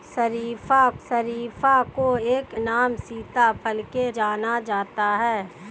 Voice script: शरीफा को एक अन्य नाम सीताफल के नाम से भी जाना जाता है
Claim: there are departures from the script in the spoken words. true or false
true